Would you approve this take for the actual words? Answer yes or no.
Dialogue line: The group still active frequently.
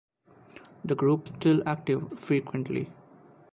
yes